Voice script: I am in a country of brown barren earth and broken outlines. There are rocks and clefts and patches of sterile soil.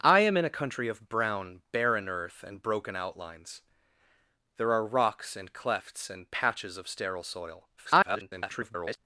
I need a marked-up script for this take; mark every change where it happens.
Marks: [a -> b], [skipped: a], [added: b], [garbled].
I am in a country of brown barren earth and broken outlines. There are rocks and clefts and patches of sterile soil. [garbled]